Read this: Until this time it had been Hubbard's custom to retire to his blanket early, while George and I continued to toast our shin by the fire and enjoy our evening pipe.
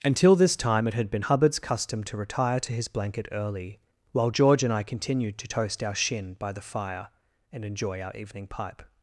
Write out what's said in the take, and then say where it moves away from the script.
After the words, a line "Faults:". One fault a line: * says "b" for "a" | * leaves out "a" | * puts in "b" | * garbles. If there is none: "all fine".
Until this time it had been Hubbard's custom to retire to his blanket early, while George and I continued to toast our shin by the fire and enjoy our evening pipe.
Faults:
all fine